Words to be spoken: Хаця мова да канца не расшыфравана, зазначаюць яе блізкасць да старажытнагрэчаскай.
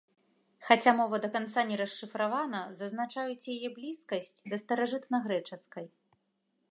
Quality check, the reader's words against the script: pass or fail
pass